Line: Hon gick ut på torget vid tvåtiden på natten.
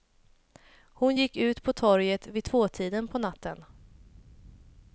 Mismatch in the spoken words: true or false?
false